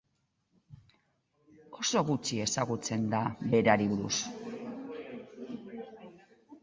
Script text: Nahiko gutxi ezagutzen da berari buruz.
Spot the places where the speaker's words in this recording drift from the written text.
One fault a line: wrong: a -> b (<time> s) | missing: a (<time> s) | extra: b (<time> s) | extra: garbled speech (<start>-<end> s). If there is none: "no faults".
wrong: Nahiko -> Oso (1.8 s)